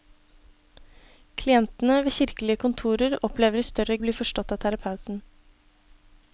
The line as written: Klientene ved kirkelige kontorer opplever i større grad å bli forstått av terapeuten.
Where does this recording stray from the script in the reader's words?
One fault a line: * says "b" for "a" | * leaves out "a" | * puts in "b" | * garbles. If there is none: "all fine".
* leaves out "grad"